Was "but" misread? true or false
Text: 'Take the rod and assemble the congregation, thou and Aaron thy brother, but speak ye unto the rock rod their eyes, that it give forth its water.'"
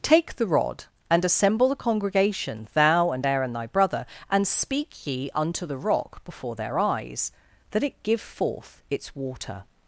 true